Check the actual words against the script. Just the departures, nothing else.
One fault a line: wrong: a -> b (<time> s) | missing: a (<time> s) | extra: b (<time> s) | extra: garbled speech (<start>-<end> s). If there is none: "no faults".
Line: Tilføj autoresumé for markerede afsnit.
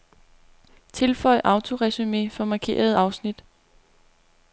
no faults